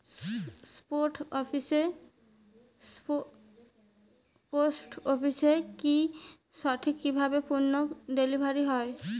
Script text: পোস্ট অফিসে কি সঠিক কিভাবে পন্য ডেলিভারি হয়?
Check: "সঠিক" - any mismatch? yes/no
no